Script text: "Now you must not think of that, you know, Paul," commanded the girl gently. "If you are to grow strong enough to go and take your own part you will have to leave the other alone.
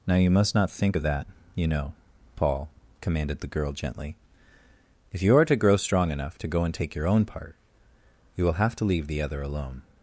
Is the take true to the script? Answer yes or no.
yes